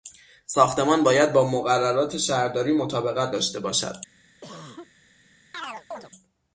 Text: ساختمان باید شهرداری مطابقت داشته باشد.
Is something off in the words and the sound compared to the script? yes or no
yes